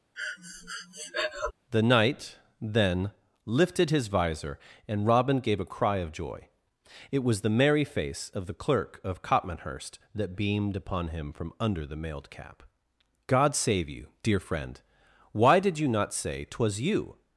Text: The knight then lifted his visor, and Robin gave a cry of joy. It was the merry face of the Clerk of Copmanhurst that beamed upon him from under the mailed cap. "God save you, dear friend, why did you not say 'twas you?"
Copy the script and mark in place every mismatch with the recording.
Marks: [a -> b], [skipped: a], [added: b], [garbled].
The knight then lifted his visor, and Robin gave a cry of joy. It was the merry face of the Clerk of Copmanhurst that beamed upon him from under the mailed cap. "God save you, dear friend, why did you not say 'twas you?"